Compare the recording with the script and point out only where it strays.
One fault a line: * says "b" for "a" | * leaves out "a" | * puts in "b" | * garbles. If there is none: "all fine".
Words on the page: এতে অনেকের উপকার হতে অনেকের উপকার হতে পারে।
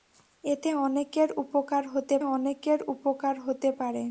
all fine